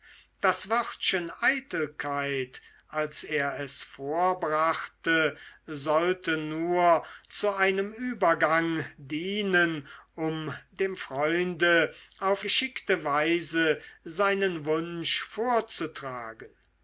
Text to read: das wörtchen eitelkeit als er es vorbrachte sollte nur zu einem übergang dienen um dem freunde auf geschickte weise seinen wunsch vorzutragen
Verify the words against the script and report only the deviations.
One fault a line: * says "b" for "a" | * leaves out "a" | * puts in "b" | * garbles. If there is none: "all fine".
all fine